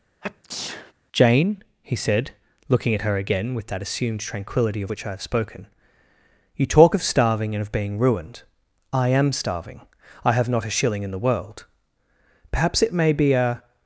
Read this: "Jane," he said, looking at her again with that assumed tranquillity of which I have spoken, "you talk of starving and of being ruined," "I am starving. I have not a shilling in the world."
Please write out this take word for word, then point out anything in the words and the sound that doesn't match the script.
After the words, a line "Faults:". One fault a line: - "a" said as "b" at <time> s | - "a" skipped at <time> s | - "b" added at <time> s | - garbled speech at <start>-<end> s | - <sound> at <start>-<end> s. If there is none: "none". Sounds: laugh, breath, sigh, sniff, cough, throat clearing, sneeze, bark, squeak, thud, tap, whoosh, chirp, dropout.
"Jane," he said, looking at her again with that assumed tranquillity of which I have spoken, "you talk of starving and of being ruined," "I am starving. I have not a shilling in the world." "Perhaps it may be a
Faults:
- sneeze at 0.2-0.9 s
- "Perhaps it may be a" added at 12.5 s